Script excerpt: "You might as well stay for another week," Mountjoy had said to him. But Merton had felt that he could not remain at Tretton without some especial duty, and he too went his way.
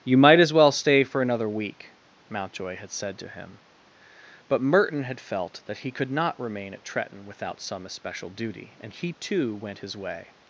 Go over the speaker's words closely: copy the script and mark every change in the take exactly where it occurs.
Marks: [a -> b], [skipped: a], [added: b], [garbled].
"You might as well stay for another week," Mountjoy had said to him. But Merton had felt that he could not remain at Tretton without some especial duty, and he too went his way.